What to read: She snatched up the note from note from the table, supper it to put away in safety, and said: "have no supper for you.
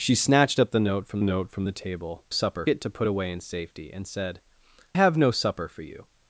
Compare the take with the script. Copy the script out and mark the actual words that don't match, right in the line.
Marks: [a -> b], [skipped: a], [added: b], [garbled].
She snatched up the note from note from the table, supper it to put away in safety, and said: "have no supper for you.